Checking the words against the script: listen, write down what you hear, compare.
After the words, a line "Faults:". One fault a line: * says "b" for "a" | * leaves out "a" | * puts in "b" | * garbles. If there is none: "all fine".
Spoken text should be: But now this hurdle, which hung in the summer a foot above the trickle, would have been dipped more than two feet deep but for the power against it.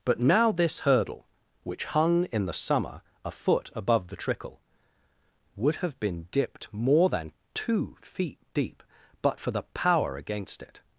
But now this hurdle, which hung in the summer a foot above the trickle, would have been dipped more than two feet deep but for the power against it.
Faults:
all fine